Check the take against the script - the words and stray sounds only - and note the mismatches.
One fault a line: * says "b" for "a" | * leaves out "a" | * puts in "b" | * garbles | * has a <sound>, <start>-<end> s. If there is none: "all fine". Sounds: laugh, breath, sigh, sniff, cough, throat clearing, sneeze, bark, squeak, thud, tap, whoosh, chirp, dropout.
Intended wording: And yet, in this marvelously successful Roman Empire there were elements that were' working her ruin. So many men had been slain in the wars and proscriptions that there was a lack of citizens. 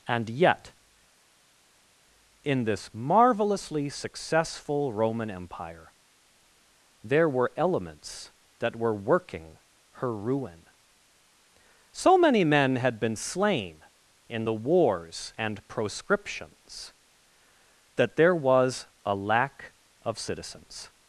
all fine